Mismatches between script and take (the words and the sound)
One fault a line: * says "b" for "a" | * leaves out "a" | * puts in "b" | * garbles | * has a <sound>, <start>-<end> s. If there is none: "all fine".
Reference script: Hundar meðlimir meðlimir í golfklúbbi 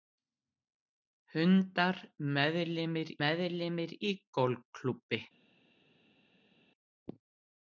all fine